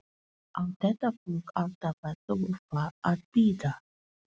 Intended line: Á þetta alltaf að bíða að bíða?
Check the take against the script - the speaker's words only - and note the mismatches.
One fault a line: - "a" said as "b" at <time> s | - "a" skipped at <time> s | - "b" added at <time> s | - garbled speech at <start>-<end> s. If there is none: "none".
- "fólk" added at 1.2 s
- "bíða" said as "þurfa" at 2.3 s